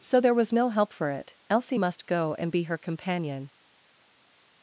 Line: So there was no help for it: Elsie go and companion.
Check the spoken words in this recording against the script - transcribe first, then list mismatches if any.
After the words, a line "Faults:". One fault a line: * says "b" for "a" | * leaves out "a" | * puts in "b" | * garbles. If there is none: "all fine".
So there was no help for it: Elsie must go and be her companion.
Faults:
* puts in "must"
* puts in "be her"